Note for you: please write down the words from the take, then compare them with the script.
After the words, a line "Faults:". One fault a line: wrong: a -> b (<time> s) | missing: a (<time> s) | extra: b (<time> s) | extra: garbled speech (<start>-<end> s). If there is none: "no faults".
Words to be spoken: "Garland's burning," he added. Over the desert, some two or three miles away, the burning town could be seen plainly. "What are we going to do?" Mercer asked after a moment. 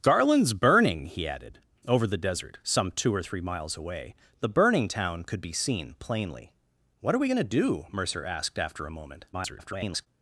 "Garland's burning," he added. Over the desert, some two or three miles away, the burning town could be seen plainly. "What are we going to do?" Mercer asked after a moment. [garbled]
Faults:
extra: garbled speech (9.3-10.1 s)